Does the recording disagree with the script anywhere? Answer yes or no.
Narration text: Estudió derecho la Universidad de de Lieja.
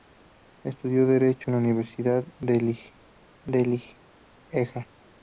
no